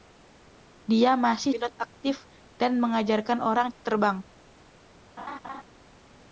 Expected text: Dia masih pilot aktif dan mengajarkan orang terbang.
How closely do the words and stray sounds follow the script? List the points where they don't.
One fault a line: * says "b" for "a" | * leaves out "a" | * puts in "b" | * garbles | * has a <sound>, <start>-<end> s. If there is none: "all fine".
* has a laugh, 5.2-5.6 s